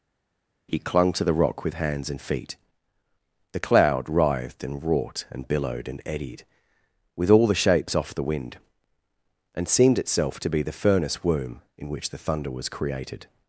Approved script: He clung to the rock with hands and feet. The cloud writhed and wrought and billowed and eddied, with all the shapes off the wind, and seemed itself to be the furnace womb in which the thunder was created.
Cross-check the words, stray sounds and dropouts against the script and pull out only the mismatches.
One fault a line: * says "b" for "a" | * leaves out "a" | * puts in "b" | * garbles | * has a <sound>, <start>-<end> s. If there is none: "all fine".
all fine